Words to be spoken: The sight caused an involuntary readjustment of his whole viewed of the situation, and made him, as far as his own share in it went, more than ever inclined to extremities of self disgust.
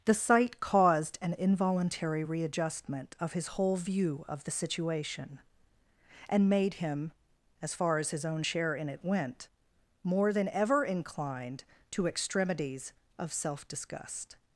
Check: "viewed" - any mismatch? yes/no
yes